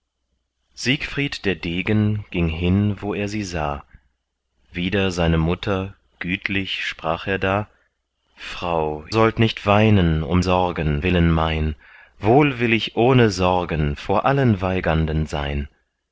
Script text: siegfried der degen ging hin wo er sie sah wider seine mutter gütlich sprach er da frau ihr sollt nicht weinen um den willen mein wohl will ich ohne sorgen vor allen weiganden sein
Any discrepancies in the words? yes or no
yes